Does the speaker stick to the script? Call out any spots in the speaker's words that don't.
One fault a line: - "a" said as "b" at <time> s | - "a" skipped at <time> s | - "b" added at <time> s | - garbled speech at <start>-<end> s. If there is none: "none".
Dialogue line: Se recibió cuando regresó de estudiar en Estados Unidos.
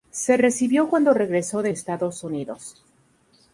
- "estudiar en" skipped at 1.7 s